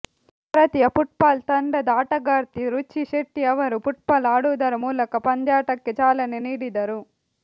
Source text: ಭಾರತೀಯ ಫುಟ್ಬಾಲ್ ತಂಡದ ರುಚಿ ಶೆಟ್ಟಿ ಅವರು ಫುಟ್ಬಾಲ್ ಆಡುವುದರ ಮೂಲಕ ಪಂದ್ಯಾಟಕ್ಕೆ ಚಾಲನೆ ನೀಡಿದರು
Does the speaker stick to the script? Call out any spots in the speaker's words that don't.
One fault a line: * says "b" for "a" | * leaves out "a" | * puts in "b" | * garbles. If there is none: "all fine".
* puts in "ಆಟಗಾರ್ತಿ"